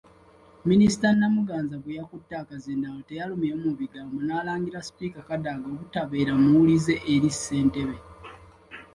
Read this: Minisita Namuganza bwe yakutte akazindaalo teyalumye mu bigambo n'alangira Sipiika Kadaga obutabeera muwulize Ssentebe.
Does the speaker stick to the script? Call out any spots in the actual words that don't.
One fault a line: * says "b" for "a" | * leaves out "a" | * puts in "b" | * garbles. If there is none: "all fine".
* puts in "eri"